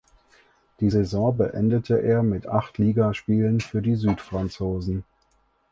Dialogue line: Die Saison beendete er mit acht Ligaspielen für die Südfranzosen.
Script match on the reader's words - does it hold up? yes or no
yes